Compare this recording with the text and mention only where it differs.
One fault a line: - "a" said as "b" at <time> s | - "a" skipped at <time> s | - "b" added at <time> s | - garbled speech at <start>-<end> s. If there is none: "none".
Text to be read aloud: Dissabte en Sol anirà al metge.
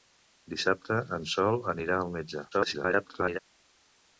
- garbled speech at 2.5-3.4 s